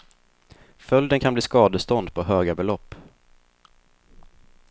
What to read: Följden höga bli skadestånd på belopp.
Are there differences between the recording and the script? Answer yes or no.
yes